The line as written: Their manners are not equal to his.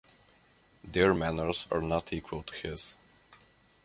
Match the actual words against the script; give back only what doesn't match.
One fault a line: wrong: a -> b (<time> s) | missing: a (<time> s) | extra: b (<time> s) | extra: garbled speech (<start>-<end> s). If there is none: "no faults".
no faults